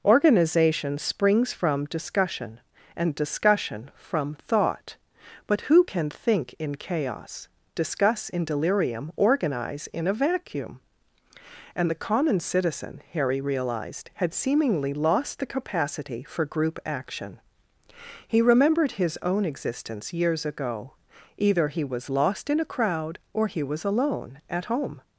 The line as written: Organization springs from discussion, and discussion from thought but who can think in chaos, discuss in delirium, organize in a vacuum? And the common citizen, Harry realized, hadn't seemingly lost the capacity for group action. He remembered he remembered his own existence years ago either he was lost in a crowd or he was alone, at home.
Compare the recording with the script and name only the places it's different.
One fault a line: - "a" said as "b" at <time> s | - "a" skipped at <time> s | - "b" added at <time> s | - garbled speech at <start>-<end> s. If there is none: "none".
- "hadn't" said as "had" at 14.1 s
- "he remembered" skipped at 18.9 s